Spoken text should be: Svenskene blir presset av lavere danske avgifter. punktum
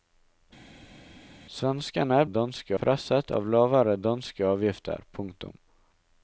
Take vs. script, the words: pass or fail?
fail